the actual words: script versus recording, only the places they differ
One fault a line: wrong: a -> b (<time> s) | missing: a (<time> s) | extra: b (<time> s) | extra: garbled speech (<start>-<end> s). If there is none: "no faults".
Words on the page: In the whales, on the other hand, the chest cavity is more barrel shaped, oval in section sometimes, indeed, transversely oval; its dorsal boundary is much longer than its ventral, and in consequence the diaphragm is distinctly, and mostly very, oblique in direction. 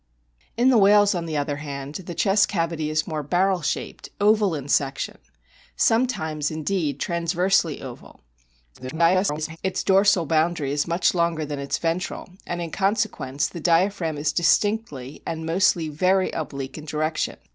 extra: garbled speech (8.7-9.6 s)